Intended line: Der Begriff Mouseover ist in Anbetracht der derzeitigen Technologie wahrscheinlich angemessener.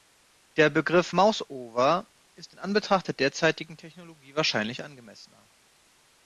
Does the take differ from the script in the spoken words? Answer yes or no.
no